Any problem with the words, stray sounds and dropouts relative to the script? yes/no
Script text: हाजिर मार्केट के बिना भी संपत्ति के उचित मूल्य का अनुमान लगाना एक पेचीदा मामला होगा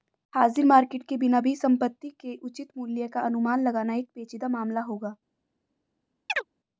yes